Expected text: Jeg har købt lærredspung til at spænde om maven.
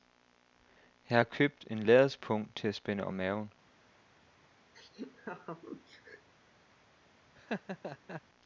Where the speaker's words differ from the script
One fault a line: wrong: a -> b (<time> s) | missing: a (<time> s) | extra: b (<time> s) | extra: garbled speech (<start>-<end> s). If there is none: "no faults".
extra: en (1.7 s)